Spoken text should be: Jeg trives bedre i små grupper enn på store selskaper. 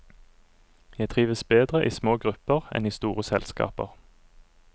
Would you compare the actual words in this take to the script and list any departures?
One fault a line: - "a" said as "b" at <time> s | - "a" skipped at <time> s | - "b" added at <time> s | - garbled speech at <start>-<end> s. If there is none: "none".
- "på" said as "i" at 2.9 s